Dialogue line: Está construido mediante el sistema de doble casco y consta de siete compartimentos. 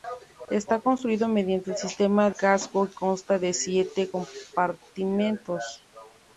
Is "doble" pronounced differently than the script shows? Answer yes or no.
yes